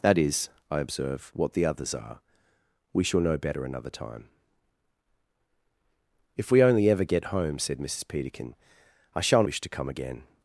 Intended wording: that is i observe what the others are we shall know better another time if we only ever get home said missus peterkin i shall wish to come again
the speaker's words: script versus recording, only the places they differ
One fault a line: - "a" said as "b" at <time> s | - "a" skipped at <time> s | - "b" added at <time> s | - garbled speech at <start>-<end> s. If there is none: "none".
none